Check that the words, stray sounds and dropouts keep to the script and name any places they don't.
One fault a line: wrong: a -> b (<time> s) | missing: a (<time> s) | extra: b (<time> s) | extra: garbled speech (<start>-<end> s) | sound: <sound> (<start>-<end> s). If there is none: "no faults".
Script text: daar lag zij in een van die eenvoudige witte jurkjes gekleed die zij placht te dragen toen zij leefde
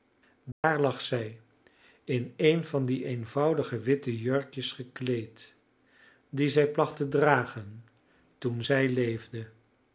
sound: dropout (0.5-0.6 s)